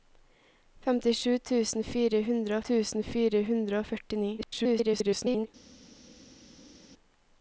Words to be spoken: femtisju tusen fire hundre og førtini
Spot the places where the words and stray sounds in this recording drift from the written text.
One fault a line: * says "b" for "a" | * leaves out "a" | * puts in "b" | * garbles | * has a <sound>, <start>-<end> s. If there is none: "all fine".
* puts in "tusen fire hundre"
* garbles